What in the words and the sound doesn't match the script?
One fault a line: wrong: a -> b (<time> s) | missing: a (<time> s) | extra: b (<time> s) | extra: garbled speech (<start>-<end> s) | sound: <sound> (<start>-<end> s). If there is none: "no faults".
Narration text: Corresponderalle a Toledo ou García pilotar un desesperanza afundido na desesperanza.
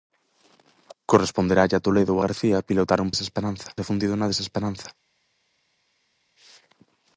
no faults